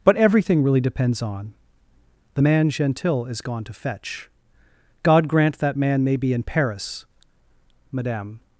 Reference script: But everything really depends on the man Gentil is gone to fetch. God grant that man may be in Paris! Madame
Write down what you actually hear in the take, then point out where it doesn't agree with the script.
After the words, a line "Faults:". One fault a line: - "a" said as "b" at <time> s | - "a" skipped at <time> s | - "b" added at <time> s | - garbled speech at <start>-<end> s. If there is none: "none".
But everything really depends on the man Gentil is gone to fetch. God grant that man may be in Paris! Madame
Faults:
none